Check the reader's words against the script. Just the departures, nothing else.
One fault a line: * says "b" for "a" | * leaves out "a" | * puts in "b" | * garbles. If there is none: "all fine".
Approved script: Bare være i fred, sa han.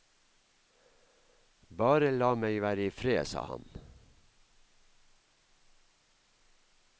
* puts in "la meg"